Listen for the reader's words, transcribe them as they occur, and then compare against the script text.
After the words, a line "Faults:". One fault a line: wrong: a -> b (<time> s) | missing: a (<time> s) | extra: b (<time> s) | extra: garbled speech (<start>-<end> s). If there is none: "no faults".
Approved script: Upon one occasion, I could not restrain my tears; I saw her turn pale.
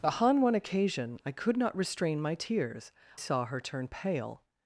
Upon one occasion, I could not restrain my tears; saw her turn pale.
Faults:
missing: I (2.9 s)